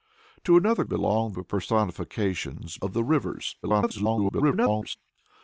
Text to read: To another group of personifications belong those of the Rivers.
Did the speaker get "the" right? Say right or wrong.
right